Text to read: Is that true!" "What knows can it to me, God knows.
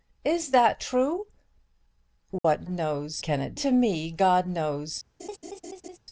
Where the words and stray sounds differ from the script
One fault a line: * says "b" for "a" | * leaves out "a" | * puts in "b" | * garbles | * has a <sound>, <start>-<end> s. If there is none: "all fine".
* has a dropout, 2.4-2.4 s
* has a laugh, 5.2-6.0 s